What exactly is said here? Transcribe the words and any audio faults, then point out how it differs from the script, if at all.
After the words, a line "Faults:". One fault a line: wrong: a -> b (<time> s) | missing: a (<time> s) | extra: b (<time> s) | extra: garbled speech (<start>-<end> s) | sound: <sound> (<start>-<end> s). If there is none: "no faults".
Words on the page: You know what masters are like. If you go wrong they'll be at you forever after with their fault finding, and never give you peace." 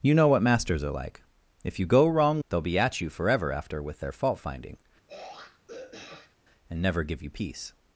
You know what masters are like. If you go wrong they'll be at you forever after with their fault finding, and never give you peace."
Faults:
sound: throat clearing (5.1-6.4 s)